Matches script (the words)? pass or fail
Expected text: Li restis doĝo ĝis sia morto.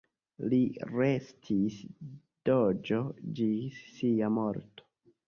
pass